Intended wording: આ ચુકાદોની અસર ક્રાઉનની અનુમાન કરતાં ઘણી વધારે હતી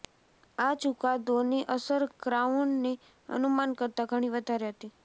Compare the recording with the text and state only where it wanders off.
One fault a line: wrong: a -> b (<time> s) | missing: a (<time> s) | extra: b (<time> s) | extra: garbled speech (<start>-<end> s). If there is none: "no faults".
no faults